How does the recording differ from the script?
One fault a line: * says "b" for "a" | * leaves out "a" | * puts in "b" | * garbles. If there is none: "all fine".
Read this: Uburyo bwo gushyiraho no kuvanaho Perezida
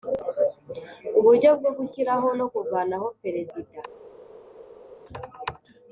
all fine